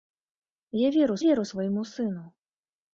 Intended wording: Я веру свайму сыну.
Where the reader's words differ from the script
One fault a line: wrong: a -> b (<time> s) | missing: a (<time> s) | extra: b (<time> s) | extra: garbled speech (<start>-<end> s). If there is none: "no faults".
extra: веру (1.2 s)